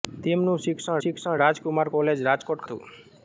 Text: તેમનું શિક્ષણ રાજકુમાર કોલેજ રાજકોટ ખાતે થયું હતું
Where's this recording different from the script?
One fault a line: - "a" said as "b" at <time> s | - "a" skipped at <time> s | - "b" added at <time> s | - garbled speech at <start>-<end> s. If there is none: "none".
- "શિક્ષણ" added at 1.0 s
- "ખાતે થયું" skipped at 2.7 s